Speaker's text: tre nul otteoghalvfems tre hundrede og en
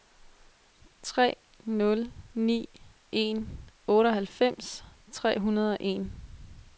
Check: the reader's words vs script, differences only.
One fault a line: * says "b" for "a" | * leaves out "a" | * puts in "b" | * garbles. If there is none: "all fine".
* puts in "ni en"